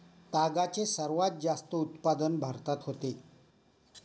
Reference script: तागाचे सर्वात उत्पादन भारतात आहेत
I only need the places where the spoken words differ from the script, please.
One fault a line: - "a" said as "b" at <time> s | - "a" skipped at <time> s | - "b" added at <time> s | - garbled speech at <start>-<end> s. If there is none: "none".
- "जास्त" added at 1.4 s
- "आहेत" said as "होते" at 2.8 s